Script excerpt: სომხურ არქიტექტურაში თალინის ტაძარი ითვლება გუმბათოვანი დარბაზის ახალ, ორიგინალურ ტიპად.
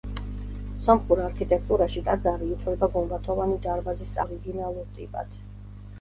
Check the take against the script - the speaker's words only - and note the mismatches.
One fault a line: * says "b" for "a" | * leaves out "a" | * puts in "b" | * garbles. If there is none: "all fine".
* leaves out "თალინის"
* leaves out "ახალ"